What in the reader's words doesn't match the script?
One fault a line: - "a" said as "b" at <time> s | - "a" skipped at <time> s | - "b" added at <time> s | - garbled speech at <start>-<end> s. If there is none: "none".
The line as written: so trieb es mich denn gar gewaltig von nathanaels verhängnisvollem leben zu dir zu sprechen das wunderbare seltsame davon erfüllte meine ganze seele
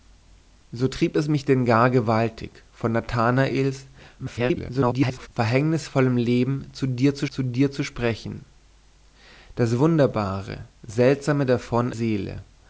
- garbled speech at 4.2-5.3 s
- "zu dir zu" added at 7.3 s
- "erfüllte meine ganze" skipped at 11.9 s